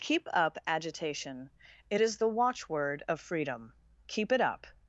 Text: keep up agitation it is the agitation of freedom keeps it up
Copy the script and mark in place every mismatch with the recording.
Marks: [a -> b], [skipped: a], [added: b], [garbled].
keep up agitation it is the [agitation -> watchword] of freedom [keeps -> keep] it up